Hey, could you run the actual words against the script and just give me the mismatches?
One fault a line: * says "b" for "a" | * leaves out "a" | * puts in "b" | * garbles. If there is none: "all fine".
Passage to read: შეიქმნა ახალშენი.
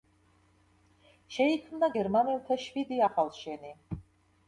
* puts in "გერმანელთა შვიდი"